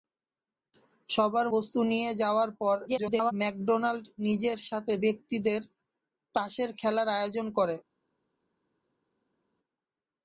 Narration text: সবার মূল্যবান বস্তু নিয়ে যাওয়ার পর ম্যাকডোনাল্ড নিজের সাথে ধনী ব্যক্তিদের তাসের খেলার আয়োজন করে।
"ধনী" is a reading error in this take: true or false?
true